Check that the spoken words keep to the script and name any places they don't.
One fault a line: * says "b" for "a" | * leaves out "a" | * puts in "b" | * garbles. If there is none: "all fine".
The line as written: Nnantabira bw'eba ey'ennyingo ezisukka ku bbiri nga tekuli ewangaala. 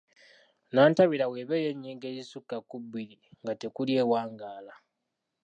all fine